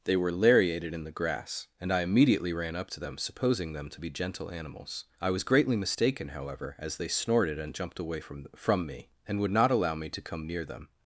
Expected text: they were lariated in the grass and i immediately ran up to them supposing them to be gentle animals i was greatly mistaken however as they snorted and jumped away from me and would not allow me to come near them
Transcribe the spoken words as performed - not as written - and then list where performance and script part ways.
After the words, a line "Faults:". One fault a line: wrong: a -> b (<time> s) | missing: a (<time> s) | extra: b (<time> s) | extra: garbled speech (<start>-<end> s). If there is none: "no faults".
they were lariated in the grass and i immediately ran up to them supposing them to be gentle animals i was greatly mistaken however as they snorted and jumped away from from me and would not allow me to come near them
Faults:
extra: from (8.6 s)